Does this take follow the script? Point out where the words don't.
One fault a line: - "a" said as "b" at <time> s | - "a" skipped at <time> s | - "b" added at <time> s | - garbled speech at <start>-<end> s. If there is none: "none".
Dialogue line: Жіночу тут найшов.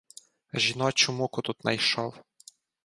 - "муку" added at 1.1 s